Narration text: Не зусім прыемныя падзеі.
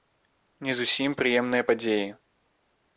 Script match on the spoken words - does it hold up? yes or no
yes